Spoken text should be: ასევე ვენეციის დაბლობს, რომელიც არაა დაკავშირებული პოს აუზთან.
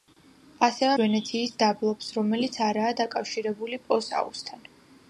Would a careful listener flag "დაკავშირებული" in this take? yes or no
no